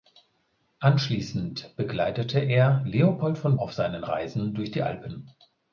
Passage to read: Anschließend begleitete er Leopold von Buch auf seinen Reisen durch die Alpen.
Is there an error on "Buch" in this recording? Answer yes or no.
yes